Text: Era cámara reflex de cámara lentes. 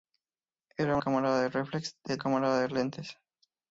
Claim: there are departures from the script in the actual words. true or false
false